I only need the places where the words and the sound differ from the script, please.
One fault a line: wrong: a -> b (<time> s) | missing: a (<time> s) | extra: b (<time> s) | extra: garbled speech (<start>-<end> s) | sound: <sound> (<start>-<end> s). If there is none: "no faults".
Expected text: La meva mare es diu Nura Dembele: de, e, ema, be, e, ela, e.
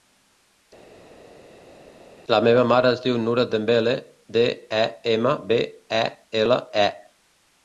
no faults